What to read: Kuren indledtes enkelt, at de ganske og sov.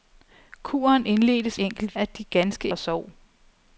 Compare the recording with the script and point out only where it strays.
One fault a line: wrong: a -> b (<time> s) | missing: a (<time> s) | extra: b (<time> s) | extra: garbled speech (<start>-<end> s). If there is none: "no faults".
no faults